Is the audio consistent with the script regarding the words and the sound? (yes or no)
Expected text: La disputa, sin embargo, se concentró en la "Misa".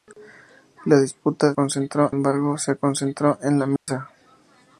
no